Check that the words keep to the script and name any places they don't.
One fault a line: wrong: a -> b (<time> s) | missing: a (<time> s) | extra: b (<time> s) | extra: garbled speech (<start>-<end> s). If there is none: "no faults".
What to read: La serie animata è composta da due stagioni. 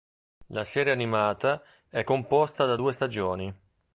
no faults